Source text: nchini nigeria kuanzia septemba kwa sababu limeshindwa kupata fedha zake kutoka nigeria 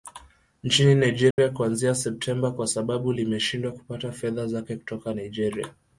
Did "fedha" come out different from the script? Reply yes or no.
no